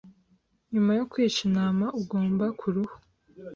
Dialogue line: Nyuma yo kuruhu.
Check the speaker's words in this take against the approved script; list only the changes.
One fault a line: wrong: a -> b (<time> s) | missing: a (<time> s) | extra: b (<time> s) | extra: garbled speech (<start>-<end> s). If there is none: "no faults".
extra: kwica intama ugomba (1.1 s)